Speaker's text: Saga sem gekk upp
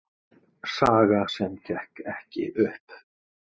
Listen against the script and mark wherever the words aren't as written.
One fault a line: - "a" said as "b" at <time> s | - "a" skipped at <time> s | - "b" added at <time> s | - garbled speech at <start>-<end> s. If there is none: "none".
- "ekki" added at 2.1 s